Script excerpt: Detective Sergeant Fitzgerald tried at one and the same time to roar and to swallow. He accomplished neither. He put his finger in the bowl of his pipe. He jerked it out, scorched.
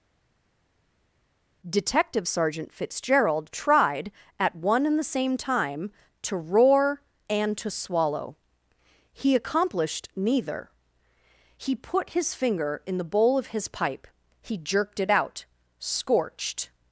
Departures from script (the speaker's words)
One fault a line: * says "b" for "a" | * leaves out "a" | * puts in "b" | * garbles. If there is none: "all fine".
all fine